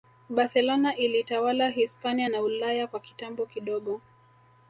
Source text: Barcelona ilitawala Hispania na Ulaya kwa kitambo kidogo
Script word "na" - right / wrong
right